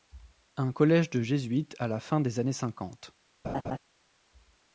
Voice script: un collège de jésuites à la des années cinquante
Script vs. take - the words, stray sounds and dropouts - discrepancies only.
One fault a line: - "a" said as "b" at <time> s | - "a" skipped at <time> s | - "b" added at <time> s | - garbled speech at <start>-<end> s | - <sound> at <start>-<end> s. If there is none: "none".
- "fin" added at 2.0 s
- laugh at 3.4-3.8 s